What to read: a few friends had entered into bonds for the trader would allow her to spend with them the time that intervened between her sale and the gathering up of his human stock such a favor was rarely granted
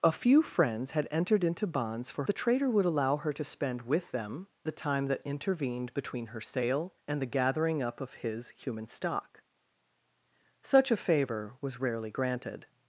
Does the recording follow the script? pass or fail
pass